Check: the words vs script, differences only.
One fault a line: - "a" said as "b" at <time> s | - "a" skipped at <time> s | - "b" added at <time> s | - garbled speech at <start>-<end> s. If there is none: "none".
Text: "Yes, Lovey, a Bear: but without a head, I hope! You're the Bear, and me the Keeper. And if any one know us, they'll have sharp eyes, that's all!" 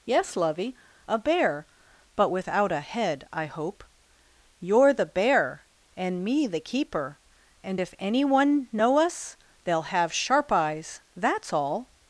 none